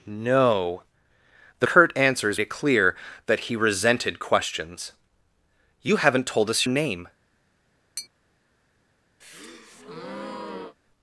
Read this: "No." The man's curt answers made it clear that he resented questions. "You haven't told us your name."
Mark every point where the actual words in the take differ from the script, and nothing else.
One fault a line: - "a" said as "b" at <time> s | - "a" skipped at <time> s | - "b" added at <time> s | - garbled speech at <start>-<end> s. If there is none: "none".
- "man's" skipped at 1.7 s
- "made" skipped at 2.4 s
- "your" skipped at 6.7 s